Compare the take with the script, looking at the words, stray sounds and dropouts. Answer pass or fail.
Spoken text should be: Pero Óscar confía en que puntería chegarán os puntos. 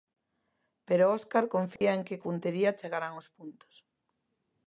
fail